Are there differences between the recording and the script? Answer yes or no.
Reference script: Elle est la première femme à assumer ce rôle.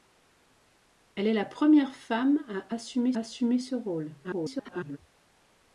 yes